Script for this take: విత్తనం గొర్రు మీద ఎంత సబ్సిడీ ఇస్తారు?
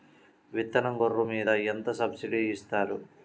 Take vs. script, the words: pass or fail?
pass